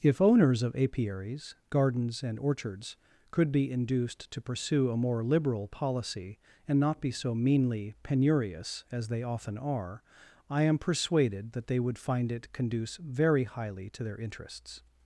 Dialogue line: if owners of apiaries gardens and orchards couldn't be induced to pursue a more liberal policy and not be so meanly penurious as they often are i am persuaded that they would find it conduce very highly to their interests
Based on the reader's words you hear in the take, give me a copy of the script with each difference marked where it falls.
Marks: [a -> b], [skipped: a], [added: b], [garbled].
if owners of apiaries gardens and orchards [couldn't -> could] be induced to pursue a more liberal policy and not be so meanly penurious as they often are i am persuaded that they would find it conduce very highly to their interests